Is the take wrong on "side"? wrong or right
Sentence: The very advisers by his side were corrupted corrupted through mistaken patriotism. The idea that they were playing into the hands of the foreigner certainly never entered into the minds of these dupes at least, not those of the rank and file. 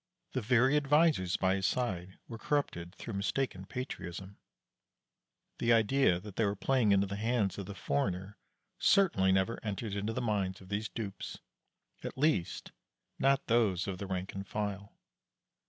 right